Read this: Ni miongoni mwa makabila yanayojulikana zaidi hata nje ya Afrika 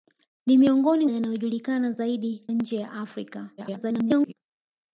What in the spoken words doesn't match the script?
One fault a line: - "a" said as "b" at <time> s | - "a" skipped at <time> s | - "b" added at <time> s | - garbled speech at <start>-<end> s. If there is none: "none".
- "mwa makabila" skipped at 1.1 s
- "hata" skipped at 2.5 s
- garbled speech at 3.6-4.3 s